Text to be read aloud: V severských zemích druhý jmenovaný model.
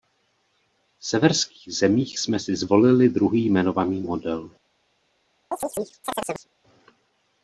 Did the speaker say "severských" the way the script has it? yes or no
yes